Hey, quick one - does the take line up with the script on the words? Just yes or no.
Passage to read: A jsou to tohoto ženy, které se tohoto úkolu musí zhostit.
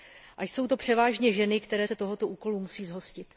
no